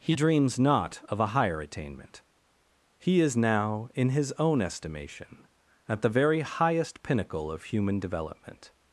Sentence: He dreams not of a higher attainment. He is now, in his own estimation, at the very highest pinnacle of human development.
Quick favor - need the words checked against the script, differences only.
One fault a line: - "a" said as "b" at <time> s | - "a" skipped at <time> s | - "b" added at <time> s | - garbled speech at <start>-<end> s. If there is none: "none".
none